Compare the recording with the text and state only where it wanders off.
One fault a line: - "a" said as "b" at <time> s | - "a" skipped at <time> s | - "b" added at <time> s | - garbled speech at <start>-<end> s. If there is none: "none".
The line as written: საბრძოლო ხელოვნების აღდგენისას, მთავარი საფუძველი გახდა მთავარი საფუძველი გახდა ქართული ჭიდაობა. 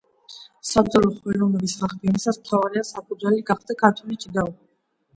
- "მთავარი საფუძველი გახდა" skipped at 3.8 s